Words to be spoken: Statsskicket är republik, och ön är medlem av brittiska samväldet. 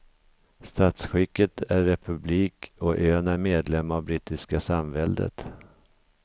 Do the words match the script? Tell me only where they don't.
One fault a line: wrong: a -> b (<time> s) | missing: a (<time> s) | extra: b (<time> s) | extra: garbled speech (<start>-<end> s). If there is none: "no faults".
no faults